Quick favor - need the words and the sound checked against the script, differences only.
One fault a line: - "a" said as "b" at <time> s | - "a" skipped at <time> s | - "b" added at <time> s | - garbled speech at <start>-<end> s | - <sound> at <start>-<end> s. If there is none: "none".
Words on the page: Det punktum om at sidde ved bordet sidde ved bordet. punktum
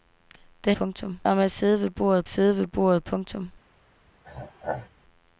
- throat clearing at 4.2-4.9 s